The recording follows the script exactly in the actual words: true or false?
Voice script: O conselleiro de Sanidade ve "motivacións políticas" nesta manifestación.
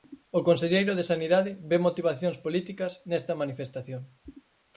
true